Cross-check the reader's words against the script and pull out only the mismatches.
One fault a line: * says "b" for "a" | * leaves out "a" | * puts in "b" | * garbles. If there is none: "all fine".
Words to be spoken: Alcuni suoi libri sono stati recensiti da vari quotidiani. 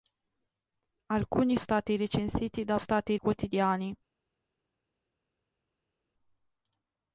* leaves out "suoi libri sono"
* says "stati" for "vari"